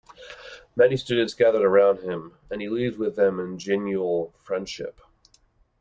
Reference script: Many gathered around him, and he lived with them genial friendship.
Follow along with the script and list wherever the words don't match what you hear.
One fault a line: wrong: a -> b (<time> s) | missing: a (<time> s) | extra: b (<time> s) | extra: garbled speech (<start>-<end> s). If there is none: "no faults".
extra: students (1.0 s)
extra: in (3.4 s)